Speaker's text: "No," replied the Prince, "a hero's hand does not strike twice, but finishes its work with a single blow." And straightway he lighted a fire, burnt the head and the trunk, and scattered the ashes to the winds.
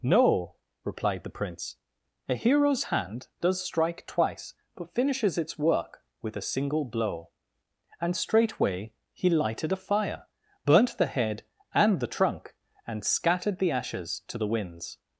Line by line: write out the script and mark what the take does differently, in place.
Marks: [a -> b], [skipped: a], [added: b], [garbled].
"No," replied the Prince, "a hero's hand does [skipped: not] strike twice, but finishes its work with a single blow." And straightway he lighted a fire, burnt the head and the trunk, and scattered the ashes to the winds.